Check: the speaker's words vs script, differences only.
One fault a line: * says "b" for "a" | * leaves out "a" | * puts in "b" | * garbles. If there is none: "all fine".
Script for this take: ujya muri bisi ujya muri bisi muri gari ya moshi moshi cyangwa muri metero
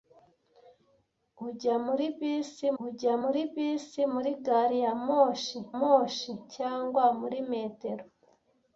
all fine